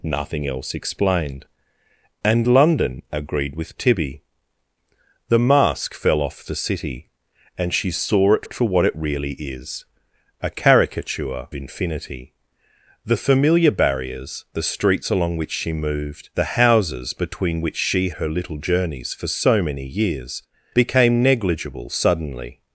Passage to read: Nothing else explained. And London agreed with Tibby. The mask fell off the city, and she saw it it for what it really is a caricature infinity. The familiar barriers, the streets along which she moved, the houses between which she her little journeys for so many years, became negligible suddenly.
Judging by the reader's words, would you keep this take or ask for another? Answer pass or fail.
pass